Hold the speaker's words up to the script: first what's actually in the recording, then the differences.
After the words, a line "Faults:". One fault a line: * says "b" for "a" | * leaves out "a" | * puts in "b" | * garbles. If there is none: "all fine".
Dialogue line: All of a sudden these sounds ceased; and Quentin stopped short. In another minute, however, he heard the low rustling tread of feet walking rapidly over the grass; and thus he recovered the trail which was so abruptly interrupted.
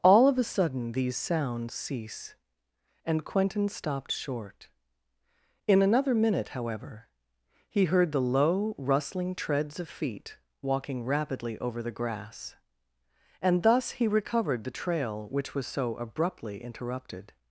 All of a sudden these sounds cease; and Quentin stopped short. In another minute, however, he heard the low rustling treads of feet walking rapidly over the grass; and thus he recovered the trail which was so abruptly interrupted.
Faults:
* says "cease" for "ceased"
* says "treads" for "tread"